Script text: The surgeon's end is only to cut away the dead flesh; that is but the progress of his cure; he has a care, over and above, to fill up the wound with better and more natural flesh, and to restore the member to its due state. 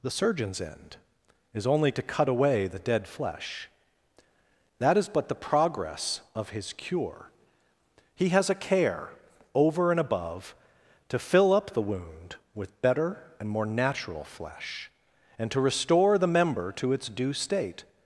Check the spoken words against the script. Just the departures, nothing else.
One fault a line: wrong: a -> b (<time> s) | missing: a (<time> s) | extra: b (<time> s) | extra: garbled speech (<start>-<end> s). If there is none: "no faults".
no faults